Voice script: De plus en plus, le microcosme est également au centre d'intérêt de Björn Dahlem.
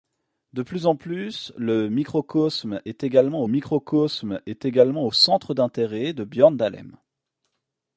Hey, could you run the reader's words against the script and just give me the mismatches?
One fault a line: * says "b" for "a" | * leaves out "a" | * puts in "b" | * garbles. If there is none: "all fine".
* puts in "microcosme est également"